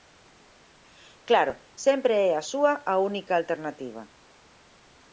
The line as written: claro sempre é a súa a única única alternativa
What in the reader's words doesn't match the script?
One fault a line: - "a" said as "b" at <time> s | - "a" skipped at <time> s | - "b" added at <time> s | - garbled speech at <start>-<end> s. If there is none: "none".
- "única" skipped at 3.3 s